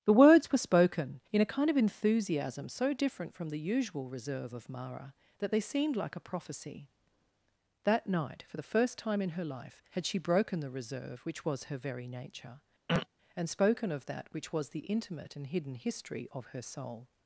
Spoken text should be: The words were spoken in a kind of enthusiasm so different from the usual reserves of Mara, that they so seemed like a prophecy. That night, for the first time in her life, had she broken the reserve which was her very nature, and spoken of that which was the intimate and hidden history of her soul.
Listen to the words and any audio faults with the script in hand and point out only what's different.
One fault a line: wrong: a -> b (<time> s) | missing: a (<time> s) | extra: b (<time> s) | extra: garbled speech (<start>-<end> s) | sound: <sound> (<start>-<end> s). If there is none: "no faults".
wrong: reserves -> reserve (4.1 s)
missing: so (5.6 s)
sound: throat clearing (12.9-13.1 s)